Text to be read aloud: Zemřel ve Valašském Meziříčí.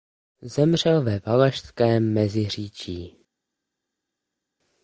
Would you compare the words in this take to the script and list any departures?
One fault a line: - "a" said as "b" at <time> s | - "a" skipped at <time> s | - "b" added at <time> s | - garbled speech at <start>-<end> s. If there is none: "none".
none